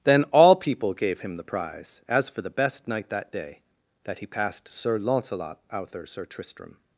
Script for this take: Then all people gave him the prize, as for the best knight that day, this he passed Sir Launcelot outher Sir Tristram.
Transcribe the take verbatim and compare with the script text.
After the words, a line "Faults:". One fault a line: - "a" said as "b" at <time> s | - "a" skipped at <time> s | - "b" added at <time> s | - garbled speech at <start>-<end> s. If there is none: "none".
Then all people gave him the prize, as for the best knight that day, that he passed Sir Launcelot outher Sir Tristram.
Faults:
- "this" said as "that" at 4.0 s